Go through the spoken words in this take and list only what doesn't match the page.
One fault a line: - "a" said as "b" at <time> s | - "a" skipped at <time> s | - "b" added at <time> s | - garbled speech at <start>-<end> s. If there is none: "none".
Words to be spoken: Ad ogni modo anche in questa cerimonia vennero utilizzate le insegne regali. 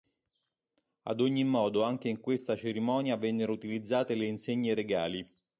none